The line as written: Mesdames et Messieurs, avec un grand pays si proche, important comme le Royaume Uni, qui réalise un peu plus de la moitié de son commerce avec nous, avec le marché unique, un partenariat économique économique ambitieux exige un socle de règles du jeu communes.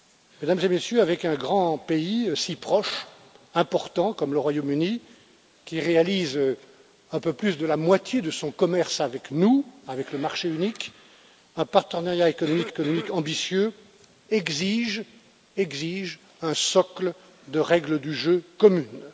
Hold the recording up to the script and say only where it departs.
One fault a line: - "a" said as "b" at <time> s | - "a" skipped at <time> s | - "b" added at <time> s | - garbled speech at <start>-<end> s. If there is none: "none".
none